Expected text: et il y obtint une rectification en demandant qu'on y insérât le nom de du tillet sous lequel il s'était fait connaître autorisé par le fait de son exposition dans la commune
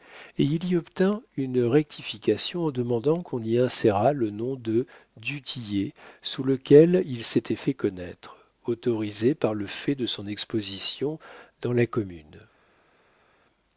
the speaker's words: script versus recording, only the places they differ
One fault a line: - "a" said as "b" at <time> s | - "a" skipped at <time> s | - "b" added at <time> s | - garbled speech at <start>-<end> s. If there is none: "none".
none